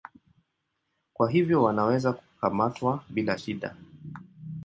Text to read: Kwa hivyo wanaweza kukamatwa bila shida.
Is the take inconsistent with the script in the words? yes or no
no